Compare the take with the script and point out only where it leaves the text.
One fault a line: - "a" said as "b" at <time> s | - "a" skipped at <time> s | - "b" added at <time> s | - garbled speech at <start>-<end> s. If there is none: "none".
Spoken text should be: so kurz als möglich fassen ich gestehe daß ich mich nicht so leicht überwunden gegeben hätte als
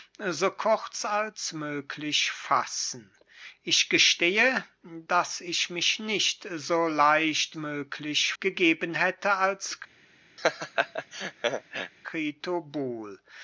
- "überwunden" said as "möglich" at 7.6 s